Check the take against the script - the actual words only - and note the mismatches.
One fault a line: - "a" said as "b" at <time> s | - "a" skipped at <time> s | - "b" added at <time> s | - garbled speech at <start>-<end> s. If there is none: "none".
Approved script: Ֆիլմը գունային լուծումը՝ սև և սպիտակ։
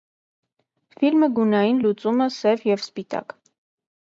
none